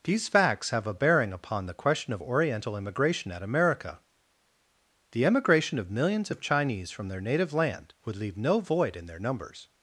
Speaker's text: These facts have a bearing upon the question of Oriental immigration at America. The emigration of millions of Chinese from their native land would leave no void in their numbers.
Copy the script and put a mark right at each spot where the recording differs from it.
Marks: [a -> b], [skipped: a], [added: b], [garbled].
These facts have a bearing upon the question of Oriental immigration at America. The emigration of millions of Chinese from their native land would leave no void in their numbers.